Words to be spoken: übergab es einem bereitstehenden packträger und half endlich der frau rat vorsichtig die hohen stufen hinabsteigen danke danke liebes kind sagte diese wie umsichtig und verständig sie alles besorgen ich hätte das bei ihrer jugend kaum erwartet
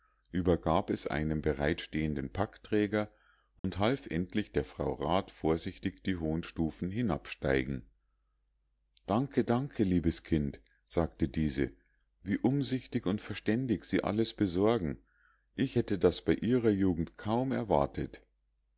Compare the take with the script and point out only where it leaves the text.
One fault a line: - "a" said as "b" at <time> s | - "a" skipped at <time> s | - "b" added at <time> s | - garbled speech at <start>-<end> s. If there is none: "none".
none